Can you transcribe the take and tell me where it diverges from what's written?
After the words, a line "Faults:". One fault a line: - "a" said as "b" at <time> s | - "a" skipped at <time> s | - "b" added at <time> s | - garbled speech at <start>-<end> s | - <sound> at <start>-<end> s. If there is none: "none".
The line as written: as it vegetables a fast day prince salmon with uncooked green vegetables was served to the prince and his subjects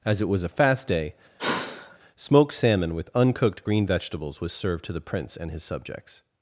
as it was a fast day smoked salmon with uncooked green vegetables was served to the prince and his subjects
Faults:
- "vegetables" said as "was" at 0.3 s
- sigh at 1.4-2.0 s
- "prince" said as "smoked" at 2.2 s